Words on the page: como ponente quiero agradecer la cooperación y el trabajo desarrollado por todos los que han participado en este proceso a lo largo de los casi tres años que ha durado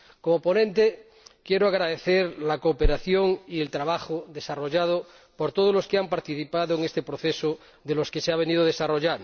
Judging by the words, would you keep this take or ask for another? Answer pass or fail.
fail